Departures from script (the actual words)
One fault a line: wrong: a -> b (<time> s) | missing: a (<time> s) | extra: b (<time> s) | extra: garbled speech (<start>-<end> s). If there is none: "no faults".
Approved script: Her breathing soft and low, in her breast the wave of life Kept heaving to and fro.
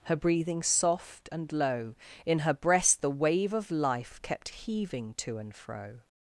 no faults